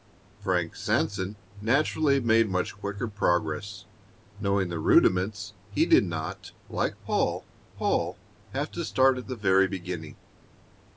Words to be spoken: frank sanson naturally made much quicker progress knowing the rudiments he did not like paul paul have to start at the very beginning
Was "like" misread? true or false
false